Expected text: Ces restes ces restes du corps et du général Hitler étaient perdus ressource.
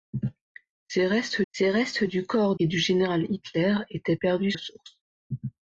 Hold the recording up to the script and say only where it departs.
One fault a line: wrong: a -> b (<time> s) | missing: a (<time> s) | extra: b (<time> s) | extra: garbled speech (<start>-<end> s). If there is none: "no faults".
no faults